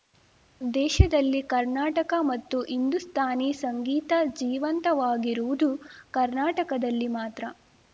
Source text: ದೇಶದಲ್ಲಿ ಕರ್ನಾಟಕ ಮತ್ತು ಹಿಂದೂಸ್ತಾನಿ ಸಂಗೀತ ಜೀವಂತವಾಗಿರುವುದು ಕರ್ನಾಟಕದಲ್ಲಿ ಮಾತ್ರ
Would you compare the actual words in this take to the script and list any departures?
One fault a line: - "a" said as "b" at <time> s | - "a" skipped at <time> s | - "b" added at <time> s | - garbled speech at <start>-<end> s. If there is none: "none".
none